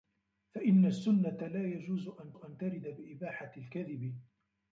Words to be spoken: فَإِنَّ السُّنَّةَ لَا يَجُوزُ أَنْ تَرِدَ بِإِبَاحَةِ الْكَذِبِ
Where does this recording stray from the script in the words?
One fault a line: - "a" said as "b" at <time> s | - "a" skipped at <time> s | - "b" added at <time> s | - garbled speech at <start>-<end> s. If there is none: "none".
- "أَنْ" added at 2.3 s